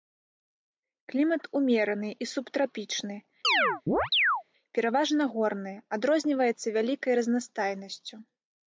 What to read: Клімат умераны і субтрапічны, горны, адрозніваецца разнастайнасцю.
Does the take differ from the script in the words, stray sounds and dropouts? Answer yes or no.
yes